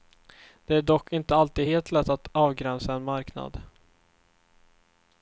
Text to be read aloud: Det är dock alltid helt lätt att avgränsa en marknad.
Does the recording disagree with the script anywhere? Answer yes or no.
yes